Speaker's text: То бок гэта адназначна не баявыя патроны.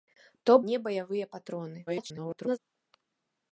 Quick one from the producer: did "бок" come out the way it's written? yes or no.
no